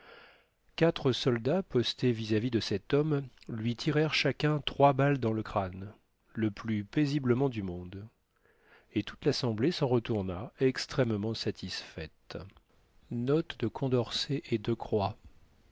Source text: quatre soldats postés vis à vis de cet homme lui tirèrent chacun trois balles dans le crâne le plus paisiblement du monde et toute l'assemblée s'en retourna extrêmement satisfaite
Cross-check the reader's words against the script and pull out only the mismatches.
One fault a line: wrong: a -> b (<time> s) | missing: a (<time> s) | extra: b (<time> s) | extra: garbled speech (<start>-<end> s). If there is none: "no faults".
no faults